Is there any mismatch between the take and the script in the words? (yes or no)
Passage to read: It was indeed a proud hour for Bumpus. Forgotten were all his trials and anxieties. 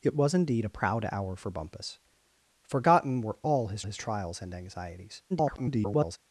yes